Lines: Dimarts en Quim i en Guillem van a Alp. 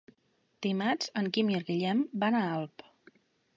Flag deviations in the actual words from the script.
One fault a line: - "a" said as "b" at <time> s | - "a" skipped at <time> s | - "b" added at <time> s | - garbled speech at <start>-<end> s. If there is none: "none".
none